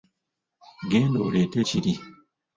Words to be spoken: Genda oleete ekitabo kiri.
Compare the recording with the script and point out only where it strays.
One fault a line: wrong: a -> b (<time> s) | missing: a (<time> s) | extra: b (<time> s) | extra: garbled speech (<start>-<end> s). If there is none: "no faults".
missing: ekitabo (1.6 s)